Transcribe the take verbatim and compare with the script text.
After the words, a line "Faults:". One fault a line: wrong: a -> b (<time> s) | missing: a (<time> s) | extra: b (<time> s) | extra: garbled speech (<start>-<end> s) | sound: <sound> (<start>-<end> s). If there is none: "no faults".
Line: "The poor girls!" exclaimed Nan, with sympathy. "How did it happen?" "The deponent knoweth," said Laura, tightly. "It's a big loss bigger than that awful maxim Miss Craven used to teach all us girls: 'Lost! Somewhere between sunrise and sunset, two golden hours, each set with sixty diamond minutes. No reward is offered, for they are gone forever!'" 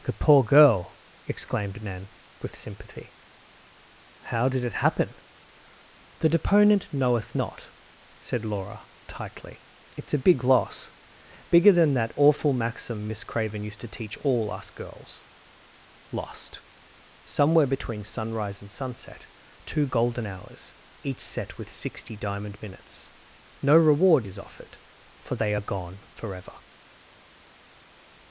"The poor girl!" exclaimed Nan, with sympathy. "How did it happen?" "The deponent knoweth not," said Laura, tightly. "It's a big loss bigger than that awful maxim Miss Craven used to teach all us girls: 'Lost! Somewhere between sunrise and sunset, two golden hours, each set with sixty diamond minutes. No reward is offered, for they are gone forever!'"
Faults:
wrong: girls -> girl (0.4 s)
extra: not (7.3 s)